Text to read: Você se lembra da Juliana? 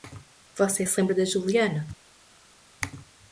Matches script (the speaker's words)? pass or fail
pass